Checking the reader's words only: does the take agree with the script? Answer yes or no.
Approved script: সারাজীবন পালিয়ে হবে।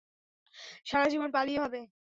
yes